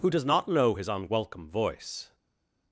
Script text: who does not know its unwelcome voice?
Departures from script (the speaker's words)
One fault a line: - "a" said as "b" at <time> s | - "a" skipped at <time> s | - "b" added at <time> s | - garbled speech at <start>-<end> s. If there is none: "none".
- "its" said as "his" at 0.7 s